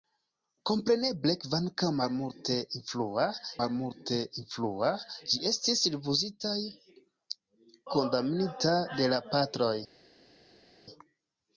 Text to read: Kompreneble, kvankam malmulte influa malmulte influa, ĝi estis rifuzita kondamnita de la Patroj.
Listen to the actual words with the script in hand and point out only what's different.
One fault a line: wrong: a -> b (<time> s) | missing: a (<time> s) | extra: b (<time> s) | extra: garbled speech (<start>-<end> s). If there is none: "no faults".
no faults